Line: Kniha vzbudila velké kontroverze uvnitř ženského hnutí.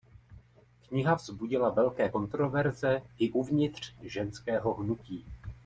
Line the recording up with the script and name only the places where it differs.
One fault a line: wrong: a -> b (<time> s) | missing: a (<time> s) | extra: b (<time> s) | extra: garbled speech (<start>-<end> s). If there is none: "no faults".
extra: i (3.2 s)